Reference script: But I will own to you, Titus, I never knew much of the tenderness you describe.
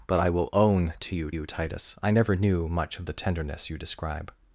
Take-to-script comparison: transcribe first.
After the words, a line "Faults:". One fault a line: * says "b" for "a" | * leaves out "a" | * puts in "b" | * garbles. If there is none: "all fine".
But I will own to you you, Titus, I never knew much of the tenderness you describe.
Faults:
* puts in "you"